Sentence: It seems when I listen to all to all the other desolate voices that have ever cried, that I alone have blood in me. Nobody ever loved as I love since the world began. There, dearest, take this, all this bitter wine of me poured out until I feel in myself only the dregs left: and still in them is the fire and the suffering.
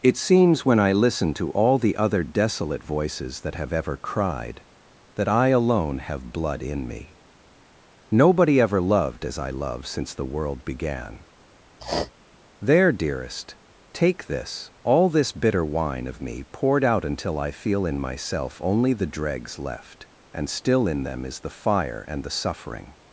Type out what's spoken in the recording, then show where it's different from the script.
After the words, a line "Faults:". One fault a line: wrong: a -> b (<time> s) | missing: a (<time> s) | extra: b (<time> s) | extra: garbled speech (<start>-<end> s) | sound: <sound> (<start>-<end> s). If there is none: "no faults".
It seems when I listen to all the other desolate voices that have ever cried, that I alone have blood in me. Nobody ever loved as I love since the world began. There, dearest, take this, all this bitter wine of me poured out until I feel in myself only the dregs left: and still in them is the fire and the suffering.
Faults:
missing: to all (1.8 s)
sound: sniff (11.8-12.1 s)